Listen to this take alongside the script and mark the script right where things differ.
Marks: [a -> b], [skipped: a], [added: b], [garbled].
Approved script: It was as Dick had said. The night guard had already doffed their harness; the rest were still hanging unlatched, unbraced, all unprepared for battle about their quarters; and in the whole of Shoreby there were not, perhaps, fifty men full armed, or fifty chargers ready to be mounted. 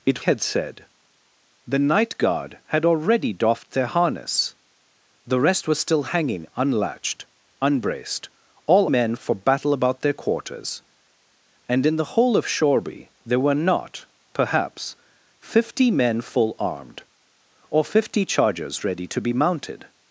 It [skipped: was as Dick] had said. The night guard had already doffed their harness; the rest were still hanging unlatched, unbraced, all [unprepared -> men] for battle about their quarters; and in the whole of Shoreby there were not, perhaps, fifty men full armed, or fifty chargers ready to be mounted.